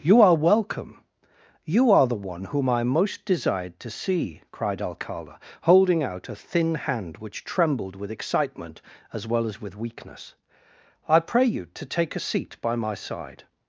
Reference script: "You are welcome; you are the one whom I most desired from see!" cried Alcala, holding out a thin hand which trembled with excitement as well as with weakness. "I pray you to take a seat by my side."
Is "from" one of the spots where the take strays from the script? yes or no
yes